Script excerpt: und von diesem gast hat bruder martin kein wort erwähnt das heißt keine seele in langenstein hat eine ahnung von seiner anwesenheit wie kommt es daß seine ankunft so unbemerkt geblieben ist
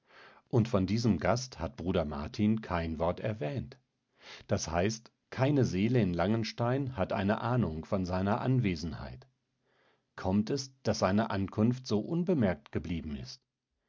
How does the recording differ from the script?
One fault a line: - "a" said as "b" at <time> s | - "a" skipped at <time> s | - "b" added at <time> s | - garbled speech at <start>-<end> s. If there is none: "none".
- "wie" skipped at 9.3 s